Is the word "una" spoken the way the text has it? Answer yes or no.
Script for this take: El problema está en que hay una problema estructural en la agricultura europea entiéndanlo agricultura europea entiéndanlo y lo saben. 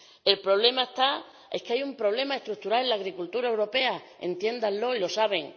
no